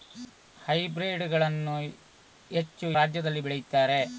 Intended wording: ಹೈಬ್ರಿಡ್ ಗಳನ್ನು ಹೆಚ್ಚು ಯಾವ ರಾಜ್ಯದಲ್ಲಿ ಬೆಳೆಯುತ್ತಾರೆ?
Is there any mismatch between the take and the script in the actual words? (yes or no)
yes